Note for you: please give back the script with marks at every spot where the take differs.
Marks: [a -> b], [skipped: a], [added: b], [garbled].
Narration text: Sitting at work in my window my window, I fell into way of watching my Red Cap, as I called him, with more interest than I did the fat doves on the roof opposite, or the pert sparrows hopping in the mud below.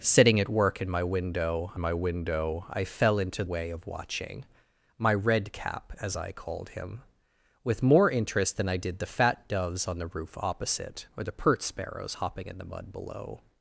Sitting at work in my window my window, I fell into way of watching my Red Cap, as I called him, with more interest than I did the fat doves on the roof opposite, or the pert sparrows hopping in the mud below.